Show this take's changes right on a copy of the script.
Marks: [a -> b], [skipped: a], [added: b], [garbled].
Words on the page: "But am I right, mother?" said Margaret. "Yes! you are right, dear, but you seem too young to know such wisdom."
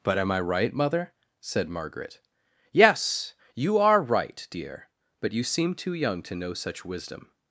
"But am I right, mother?" said Margaret. "Yes! you are right, dear, but you seem too young to know such wisdom."